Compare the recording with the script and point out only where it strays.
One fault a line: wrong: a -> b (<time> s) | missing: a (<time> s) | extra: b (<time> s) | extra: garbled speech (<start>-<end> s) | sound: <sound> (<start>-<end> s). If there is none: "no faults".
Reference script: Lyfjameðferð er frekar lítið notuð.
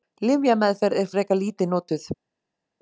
no faults